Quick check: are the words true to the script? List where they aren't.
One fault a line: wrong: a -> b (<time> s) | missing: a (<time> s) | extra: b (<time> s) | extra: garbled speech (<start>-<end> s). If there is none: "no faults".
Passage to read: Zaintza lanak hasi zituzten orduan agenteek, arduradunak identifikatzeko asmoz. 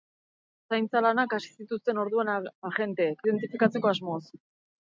missing: arduradunak (3.2 s)